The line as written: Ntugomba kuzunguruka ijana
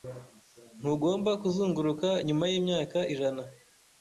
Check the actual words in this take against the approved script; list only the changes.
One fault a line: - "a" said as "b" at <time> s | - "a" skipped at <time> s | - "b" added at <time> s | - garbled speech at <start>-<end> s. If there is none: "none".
- "nyuma yimyaka" added at 2.3 s